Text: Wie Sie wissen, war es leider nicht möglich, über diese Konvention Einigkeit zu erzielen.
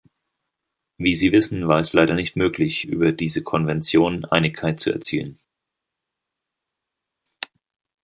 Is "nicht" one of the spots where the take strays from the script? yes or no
no